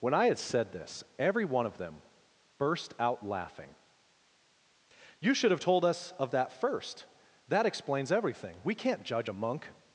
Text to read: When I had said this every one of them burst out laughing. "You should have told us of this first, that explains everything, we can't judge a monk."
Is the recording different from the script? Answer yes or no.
yes